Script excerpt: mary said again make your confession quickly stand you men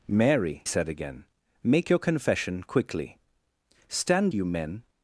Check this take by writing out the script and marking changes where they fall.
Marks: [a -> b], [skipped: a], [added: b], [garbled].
mary said again make your confession quickly stand you men